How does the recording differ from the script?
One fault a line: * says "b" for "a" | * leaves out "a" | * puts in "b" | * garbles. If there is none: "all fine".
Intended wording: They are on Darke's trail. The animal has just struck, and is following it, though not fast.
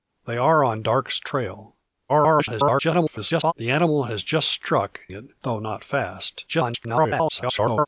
* garbles
* leaves out "and is following"
* garbles